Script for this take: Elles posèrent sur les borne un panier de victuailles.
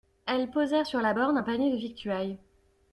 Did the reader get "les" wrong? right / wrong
wrong